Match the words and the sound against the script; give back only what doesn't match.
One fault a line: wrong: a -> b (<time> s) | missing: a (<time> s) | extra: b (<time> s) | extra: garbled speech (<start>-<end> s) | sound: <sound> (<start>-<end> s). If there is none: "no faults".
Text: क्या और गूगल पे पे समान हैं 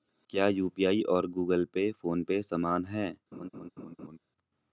extra: यू.पी.आई (0.5 s)
extra: फोन (1.9 s)
sound: laugh (3.3-4.2 s)